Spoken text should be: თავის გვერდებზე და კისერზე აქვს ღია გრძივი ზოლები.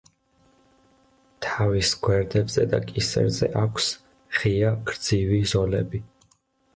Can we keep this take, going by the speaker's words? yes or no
yes